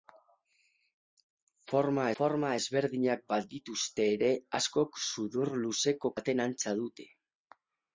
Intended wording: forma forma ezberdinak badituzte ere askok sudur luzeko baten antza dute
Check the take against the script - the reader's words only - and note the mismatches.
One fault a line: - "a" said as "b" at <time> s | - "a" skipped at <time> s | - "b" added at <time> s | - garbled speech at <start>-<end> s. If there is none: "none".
none